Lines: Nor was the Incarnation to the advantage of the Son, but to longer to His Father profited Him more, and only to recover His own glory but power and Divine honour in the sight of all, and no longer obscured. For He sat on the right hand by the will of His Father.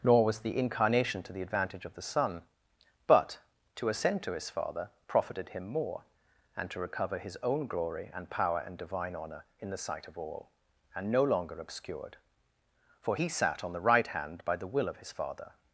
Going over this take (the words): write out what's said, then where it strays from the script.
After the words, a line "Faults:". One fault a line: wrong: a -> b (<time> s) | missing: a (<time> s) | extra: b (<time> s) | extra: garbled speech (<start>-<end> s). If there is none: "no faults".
Nor was the Incarnation to the advantage of the Son, but to ascend to His Father profited Him more, and to recover His own glory and power and Divine honour in the sight of all, and no longer obscured. For He sat on the right hand by the will of His Father.
Faults:
wrong: longer -> ascend (3.9 s)
missing: only (6.7 s)
wrong: but -> and (8.1 s)